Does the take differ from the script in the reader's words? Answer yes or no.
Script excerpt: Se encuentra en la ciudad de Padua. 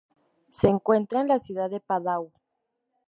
no